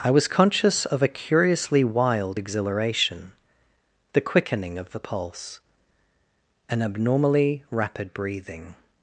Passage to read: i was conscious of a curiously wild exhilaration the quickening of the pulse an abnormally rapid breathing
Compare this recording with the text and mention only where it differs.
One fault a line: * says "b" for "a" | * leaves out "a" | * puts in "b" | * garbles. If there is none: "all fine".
all fine